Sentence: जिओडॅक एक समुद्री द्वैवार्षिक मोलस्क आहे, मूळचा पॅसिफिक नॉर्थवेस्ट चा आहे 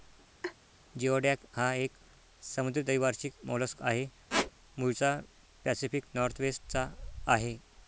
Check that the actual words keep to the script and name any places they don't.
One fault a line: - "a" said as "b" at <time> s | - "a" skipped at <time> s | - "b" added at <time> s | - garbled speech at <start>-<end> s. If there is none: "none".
- "हा" added at 1.5 s